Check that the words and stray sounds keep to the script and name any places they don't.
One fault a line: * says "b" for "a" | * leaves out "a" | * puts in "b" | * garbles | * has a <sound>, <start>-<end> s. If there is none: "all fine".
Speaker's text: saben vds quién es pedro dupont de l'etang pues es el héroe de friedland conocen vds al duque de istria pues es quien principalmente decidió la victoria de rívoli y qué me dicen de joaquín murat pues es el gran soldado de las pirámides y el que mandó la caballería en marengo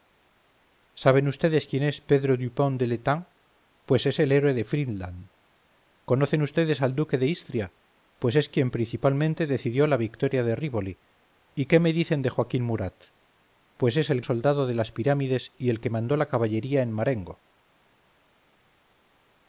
* leaves out "gran"